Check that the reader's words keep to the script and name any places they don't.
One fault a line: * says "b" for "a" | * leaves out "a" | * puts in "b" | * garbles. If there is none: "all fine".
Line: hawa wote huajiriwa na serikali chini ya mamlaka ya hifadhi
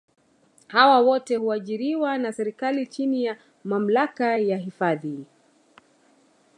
all fine